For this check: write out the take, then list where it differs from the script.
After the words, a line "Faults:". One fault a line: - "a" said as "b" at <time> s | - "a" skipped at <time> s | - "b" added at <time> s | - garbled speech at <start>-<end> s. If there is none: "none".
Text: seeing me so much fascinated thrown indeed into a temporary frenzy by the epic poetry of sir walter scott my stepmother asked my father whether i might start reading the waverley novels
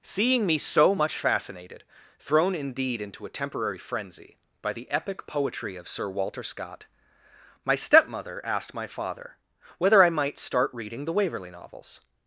seeing me so much fascinated thrown indeed into a temporary frenzy by the epic poetry of sir walter scott my stepmother asked my father whether i might start reading the waverley novels
Faults:
none